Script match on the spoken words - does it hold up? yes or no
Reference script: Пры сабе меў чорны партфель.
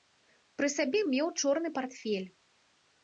yes